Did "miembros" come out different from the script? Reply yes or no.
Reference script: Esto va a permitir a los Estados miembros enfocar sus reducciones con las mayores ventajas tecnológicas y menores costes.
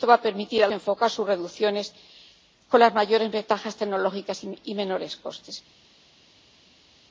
yes